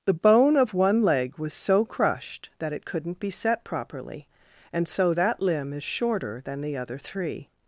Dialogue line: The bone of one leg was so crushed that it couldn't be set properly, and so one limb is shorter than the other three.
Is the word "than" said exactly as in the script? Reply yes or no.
yes